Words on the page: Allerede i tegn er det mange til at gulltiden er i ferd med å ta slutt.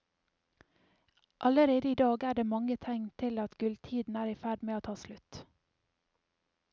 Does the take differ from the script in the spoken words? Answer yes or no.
yes